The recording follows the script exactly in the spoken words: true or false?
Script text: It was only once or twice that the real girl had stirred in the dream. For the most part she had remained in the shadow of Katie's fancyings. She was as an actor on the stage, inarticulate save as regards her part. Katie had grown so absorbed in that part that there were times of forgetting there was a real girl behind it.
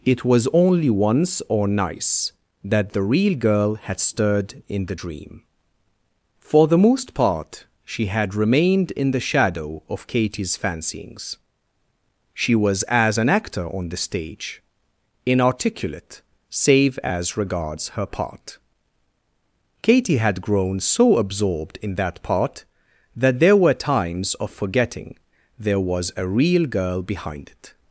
false